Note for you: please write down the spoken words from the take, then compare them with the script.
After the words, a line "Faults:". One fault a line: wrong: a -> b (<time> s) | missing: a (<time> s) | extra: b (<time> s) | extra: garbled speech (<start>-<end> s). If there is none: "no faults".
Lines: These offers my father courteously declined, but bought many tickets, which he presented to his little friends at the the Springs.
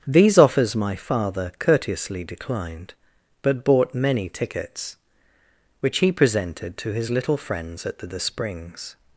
These offers my father courteously declined, but bought many tickets, which he presented to his little friends at the the Springs.
Faults:
no faults